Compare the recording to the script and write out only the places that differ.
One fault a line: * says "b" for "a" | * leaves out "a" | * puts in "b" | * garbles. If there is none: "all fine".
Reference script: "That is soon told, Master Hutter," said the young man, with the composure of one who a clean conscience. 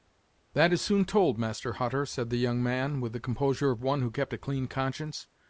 * puts in "kept"